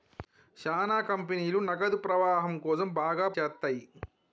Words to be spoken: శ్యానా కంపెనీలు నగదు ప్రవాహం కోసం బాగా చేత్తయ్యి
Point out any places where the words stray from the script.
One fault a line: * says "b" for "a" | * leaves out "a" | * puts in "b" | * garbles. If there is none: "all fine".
all fine